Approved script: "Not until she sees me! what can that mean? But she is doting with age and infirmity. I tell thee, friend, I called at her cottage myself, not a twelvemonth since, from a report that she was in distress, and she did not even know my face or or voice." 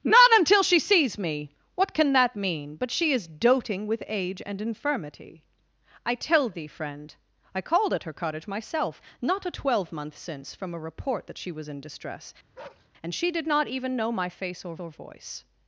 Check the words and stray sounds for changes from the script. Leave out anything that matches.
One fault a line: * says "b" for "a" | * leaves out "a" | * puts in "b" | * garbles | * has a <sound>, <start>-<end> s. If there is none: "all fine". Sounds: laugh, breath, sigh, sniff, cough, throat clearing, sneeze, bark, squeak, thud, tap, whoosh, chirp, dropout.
* has a bark, 12.5-12.9 s